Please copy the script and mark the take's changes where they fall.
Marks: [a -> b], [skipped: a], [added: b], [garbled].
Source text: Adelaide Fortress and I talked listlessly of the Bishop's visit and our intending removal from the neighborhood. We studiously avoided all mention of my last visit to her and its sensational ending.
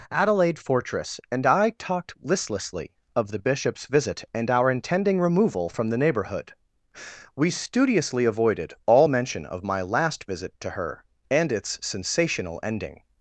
Adelaide Fortress and I talked listlessly of the Bishop's visit and our intending removal from the neighborhood. We studiously avoided all mention of my last visit to her and its sensational ending.